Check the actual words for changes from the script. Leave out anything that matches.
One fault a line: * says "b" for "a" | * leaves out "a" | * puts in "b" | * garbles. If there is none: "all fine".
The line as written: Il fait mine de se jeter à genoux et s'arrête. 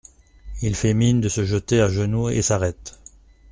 all fine